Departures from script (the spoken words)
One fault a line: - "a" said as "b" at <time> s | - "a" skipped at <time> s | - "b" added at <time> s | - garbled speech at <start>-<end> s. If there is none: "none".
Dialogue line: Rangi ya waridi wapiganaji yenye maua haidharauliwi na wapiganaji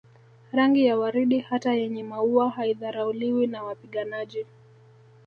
- "wapiganaji" said as "hata" at 1.4 s